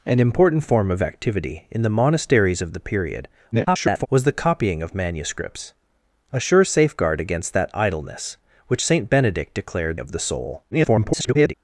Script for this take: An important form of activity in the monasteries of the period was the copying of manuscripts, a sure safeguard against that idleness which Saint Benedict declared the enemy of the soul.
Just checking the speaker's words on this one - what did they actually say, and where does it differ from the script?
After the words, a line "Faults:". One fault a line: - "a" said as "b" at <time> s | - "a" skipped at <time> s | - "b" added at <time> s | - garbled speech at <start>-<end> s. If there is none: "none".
An important form of activity in the monasteries of the period [garbled] was the copying of manuscripts, a sure safeguard against that idleness which Saint Benedict declared of the soul. [garbled]
Faults:
- garbled speech at 3.5-4.1 s
- "the enemy" skipped at 10.0 s
- garbled speech at 10.7-11.5 s